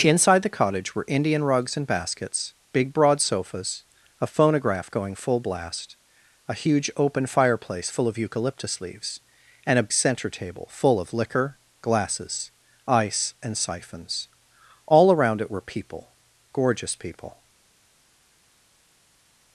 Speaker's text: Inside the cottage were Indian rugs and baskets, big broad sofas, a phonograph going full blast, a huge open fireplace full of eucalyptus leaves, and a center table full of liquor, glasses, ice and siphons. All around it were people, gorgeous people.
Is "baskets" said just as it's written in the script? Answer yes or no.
yes